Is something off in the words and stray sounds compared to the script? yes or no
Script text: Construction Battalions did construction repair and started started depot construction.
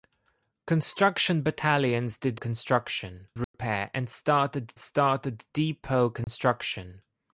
yes